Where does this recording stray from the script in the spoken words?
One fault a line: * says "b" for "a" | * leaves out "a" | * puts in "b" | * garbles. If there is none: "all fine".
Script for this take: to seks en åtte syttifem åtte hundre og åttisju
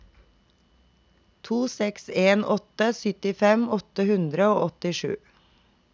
all fine